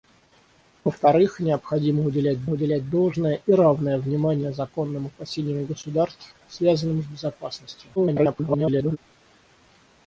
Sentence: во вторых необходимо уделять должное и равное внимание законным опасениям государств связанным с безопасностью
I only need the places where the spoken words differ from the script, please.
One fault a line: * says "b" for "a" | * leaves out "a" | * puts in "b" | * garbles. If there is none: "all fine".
* puts in "уделять"
* garbles